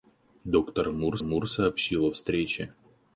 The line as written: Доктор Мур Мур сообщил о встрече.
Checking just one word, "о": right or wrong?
right